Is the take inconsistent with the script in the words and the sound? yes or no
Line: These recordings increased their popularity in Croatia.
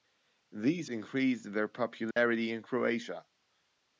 yes